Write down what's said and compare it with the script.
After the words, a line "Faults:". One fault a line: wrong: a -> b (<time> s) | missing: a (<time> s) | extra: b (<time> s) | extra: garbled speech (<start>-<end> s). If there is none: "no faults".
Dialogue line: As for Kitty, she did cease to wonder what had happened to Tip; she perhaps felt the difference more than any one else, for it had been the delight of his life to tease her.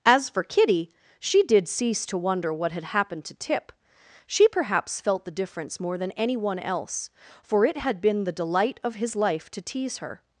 As for Kitty, she did cease to wonder what had happened to Tip; she perhaps felt the difference more than any one else, for it had been the delight of his life to tease her.
Faults:
no faults